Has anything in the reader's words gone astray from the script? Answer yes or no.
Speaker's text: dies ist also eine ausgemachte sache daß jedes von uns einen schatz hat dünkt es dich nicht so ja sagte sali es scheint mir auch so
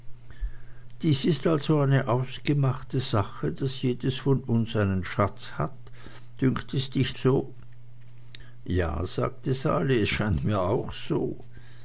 yes